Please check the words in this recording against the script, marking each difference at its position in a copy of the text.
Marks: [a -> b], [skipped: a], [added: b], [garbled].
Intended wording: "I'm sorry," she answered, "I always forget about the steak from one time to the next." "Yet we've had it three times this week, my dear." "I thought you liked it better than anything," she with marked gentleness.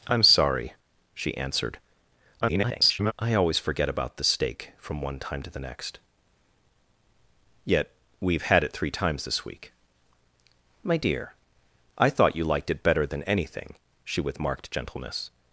"I'm sorry," she answered, [garbled] "I always forget about the steak from one time to the next." "Yet we've had it three times this week, my dear." "I thought you liked it better than anything," she with marked gentleness.